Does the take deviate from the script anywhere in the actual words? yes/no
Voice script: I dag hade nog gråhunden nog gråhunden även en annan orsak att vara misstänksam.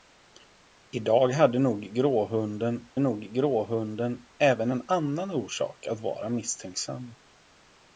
no